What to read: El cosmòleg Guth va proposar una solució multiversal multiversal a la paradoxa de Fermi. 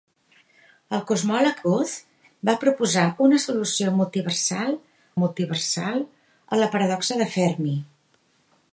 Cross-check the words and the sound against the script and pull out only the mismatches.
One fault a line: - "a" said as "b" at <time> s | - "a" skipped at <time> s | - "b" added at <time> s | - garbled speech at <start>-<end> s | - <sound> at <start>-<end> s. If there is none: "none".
none